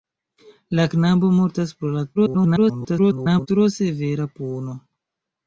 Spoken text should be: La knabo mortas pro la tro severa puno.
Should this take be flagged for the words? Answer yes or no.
yes